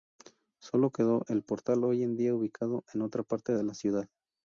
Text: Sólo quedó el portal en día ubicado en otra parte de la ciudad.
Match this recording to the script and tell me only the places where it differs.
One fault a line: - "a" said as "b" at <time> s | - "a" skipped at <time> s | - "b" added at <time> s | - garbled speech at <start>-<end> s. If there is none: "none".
- "hoy" added at 1.8 s